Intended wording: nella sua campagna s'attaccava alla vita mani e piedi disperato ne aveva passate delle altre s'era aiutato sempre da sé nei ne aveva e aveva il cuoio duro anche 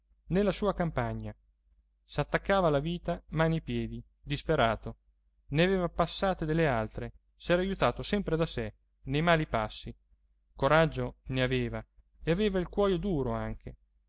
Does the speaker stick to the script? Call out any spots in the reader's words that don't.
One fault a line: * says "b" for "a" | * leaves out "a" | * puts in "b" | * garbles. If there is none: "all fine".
* puts in "mali passi coraggio"